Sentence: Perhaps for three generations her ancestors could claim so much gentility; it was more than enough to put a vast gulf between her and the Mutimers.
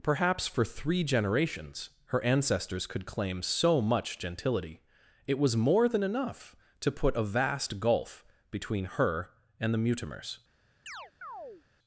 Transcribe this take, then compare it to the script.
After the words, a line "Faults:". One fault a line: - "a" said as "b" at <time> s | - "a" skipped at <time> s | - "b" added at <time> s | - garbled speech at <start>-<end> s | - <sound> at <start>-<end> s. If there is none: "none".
Perhaps for three generations her ancestors could claim so much gentility; it was more than enough to put a vast gulf between her and the Mutimers.
Faults:
- chirp at 10.9-11.6 s